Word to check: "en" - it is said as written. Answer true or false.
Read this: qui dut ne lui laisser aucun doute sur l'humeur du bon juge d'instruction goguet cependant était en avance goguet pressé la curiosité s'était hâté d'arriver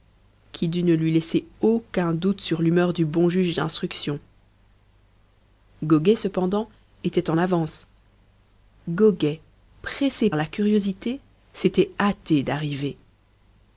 true